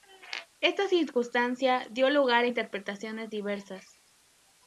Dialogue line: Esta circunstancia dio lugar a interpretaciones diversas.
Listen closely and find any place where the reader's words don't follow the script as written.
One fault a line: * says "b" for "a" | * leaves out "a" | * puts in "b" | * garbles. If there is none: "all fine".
all fine